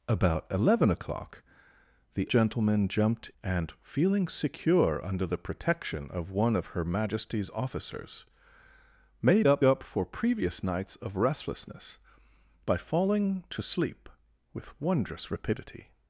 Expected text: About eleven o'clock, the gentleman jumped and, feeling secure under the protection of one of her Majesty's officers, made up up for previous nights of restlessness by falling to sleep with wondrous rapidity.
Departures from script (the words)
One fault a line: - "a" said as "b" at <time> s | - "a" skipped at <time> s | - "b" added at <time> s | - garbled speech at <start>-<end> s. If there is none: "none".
none